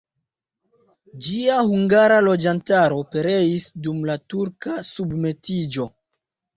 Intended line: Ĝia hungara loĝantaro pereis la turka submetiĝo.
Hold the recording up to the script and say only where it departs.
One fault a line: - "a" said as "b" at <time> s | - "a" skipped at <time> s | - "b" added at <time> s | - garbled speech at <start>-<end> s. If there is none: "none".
- "dum" added at 3.9 s